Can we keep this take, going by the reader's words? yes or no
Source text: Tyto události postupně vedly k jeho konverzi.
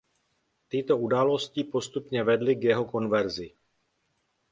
yes